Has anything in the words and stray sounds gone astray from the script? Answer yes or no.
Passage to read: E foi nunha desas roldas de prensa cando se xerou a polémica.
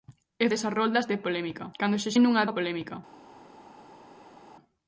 yes